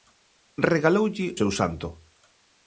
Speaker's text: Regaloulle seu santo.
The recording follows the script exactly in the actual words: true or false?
true